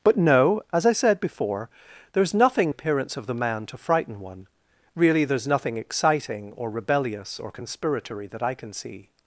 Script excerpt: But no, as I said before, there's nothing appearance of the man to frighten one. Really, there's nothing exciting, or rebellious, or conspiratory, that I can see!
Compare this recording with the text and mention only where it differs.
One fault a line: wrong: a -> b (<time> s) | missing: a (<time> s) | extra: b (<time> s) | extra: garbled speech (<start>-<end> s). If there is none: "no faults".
no faults